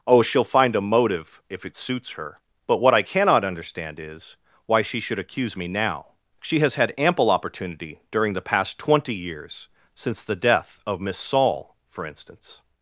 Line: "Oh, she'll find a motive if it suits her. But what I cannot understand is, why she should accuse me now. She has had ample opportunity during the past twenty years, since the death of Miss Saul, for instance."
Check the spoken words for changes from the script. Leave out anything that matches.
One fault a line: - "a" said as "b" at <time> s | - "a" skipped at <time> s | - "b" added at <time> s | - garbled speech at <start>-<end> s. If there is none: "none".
none